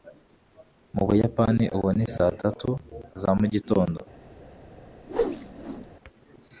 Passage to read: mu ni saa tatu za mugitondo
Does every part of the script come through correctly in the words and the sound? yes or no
no